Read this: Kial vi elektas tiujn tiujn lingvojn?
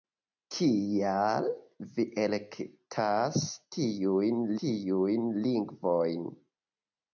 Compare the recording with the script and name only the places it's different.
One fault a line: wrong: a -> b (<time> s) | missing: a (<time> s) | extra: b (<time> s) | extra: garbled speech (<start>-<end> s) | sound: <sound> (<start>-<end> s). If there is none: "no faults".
no faults